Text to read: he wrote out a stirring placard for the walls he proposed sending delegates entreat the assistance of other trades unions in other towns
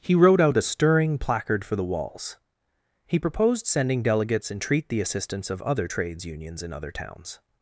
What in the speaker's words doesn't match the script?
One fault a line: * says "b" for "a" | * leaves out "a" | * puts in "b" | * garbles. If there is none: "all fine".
all fine